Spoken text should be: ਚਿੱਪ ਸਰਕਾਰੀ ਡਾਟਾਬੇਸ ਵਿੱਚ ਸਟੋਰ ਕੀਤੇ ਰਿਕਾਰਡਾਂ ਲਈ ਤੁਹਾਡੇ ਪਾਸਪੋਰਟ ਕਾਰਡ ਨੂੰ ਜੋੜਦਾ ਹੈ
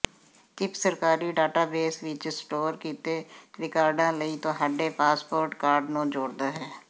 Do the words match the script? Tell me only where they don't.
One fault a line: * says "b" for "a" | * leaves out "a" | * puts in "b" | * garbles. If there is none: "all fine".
all fine